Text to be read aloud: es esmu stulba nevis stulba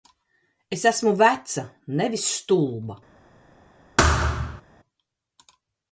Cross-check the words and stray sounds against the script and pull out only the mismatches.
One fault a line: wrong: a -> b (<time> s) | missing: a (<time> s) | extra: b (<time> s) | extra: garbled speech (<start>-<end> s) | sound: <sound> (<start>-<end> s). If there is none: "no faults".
wrong: stulba -> veca (1.2 s)
sound: thud (4.0-4.6 s)